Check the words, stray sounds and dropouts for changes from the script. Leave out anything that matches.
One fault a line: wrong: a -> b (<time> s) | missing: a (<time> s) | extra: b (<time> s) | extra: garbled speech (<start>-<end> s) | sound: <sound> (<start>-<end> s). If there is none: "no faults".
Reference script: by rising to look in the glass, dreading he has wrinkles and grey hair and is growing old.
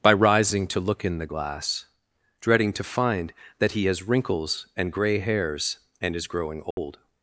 extra: to find that (2.7 s)
wrong: hair -> hairs (5.2 s)
sound: dropout (6.7-6.8 s)